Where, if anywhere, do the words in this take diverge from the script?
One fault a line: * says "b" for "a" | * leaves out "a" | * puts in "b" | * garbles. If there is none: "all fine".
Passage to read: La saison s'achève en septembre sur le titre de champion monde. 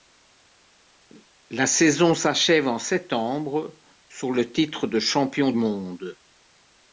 all fine